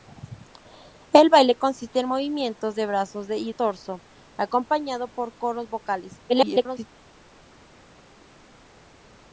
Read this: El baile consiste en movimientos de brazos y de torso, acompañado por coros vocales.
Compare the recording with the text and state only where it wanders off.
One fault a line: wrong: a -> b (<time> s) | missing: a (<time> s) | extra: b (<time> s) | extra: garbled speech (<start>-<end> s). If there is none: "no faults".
missing: de (3.5 s)
extra: garbled speech (6.3-6.9 s)